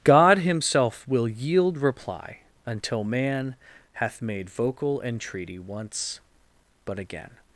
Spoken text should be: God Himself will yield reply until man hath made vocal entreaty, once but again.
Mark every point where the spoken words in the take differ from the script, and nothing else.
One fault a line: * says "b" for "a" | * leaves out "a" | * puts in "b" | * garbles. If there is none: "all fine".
all fine